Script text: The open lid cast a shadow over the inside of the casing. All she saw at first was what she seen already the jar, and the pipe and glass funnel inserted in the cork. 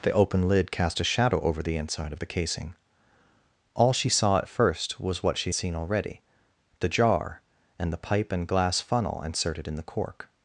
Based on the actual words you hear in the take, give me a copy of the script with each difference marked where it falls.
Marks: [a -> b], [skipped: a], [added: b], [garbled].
The open lid cast a shadow over the inside of the casing. All she saw at first was what she seen already the jar, and the pipe and glass funnel inserted in the cork.